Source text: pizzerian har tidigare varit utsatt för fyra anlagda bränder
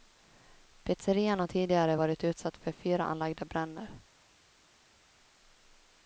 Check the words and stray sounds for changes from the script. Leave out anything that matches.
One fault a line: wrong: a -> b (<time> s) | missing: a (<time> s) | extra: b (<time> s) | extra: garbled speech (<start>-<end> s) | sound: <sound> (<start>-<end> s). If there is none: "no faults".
no faults